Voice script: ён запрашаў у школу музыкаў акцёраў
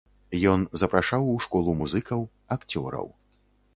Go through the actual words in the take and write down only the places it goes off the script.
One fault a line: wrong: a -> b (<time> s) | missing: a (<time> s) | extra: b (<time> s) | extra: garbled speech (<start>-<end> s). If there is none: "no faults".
no faults